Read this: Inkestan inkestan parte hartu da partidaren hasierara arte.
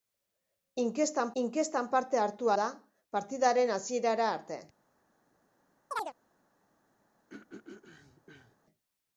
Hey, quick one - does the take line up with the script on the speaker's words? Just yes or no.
yes